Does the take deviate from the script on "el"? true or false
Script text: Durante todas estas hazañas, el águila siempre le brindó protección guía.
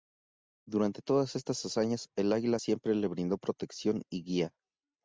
false